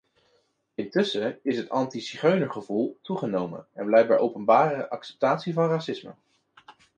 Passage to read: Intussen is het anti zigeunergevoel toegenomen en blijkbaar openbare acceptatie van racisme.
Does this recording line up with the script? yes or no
yes